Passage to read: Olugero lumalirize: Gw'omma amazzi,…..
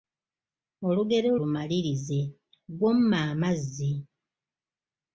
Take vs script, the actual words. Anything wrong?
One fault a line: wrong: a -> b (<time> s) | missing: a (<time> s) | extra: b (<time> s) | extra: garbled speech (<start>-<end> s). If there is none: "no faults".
no faults